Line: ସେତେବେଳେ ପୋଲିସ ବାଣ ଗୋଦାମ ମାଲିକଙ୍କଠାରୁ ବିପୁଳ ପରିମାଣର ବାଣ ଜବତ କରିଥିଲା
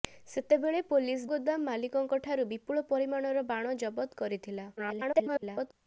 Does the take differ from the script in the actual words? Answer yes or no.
yes